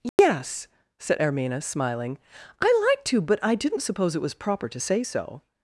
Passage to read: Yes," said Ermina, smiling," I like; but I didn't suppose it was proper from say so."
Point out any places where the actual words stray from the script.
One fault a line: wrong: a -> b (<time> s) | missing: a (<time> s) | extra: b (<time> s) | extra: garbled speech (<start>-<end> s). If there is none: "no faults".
extra: to (3.0 s)
wrong: from -> to (4.7 s)